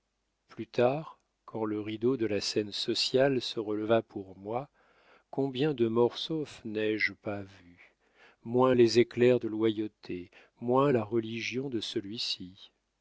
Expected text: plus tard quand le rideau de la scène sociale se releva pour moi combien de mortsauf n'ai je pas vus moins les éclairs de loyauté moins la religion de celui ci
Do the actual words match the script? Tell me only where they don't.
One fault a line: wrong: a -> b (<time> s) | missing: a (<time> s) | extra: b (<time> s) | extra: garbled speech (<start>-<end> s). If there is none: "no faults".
no faults